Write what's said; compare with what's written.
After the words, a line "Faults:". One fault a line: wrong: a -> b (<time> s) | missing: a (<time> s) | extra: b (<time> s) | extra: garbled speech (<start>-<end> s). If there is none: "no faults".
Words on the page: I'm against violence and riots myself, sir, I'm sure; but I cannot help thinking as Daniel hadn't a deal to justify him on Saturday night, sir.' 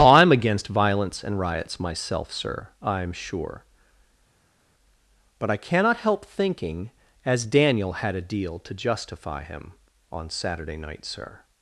I'm against violence and riots myself, sir, I'm sure; but I cannot help thinking as Daniel had a deal to justify him on Saturday night, sir.'
Faults:
wrong: hadn't -> had (7.9 s)